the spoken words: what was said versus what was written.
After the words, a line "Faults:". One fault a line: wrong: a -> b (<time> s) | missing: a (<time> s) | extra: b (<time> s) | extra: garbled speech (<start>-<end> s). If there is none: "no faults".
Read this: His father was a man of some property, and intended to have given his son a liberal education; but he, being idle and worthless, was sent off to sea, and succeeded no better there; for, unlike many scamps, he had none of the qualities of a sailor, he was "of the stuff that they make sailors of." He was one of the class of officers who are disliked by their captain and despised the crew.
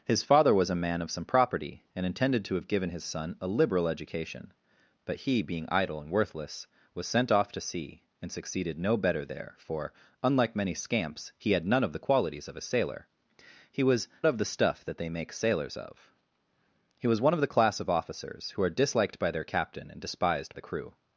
His father was a man of some property, and intended to have given his son a liberal education; but he, being idle and worthless, was sent off to sea, and succeeded no better there; for, unlike many scamps, he had none of the qualities of a sailor, he was "of the stuff that they make sailors of." He was one of the class of officers who are disliked by their captain and despised the crew.
Faults:
no faults